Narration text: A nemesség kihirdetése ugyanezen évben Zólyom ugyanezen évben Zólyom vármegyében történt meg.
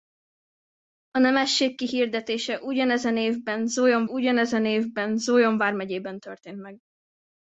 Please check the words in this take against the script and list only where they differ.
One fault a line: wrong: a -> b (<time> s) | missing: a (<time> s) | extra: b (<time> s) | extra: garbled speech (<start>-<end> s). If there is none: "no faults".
no faults